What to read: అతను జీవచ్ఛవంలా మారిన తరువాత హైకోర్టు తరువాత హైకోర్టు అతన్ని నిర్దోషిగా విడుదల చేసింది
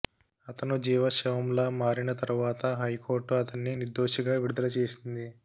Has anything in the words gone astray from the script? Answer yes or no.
yes